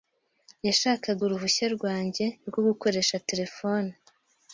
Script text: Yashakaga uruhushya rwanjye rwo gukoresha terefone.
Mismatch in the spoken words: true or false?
false